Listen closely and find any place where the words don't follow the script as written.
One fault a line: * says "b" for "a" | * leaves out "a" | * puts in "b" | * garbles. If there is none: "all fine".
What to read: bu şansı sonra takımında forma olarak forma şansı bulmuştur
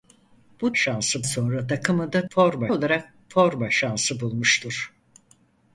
all fine